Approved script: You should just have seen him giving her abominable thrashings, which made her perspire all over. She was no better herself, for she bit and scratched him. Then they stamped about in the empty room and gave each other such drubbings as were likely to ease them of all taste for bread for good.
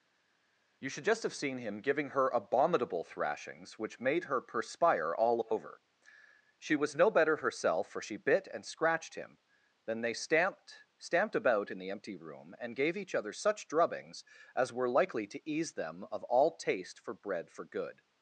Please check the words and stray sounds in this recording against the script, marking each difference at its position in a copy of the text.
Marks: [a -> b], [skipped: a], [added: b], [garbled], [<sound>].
You should just have seen him giving her abominable thrashings, which made her perspire all over. She was no better herself, for she bit and scratched him. Then they stamped [added: stamped] about in the empty room and gave each other such drubbings as were likely to ease them of all taste for bread for good.